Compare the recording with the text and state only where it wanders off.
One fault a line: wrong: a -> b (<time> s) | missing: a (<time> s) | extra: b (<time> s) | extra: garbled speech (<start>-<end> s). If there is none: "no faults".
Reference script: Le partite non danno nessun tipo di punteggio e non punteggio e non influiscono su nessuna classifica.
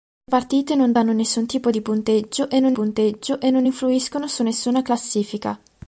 no faults